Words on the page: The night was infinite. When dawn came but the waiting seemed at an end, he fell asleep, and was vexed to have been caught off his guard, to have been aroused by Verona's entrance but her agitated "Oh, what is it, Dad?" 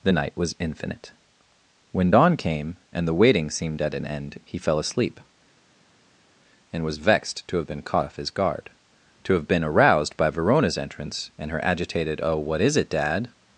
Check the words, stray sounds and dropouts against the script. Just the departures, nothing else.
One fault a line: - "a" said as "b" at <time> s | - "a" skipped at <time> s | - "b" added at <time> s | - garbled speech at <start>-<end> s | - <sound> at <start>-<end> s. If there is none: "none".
- "but" said as "and" at 2.9 s
- "but" said as "and" at 11.4 s